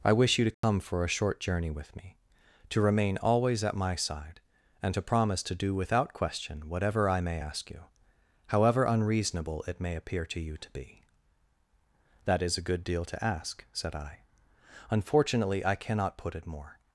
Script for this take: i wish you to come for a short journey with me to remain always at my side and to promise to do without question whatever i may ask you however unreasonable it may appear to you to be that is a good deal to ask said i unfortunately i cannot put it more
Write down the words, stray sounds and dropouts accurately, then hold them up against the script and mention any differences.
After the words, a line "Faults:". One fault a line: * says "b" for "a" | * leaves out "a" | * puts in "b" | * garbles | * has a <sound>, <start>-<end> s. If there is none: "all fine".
i wish you to come for a short journey with me to remain always at my side and to promise to do without question whatever i may ask you however unreasonable it may appear to you to be that is a good deal to ask said i unfortunately i cannot put it more
Faults:
* has a dropout, 0.5-0.6 s